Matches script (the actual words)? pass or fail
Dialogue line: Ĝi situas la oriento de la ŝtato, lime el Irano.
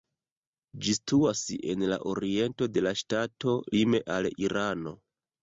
fail